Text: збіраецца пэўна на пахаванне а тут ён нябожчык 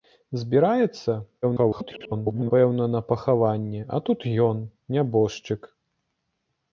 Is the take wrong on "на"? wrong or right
right